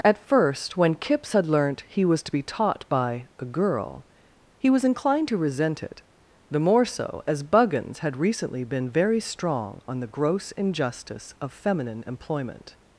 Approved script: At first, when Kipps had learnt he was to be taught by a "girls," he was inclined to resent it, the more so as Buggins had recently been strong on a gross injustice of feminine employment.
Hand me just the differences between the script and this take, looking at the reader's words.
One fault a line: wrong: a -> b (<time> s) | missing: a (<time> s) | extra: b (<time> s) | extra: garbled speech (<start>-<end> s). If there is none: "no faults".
wrong: girls -> girl (3.4 s)
extra: very (8.9 s)
wrong: a -> the (10.0 s)